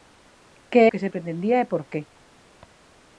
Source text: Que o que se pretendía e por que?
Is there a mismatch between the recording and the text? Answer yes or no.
no